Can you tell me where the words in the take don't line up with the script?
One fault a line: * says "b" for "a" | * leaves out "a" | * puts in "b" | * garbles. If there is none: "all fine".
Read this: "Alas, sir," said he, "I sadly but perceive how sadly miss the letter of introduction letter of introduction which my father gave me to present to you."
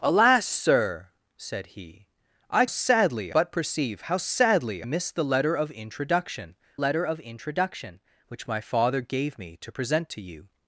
all fine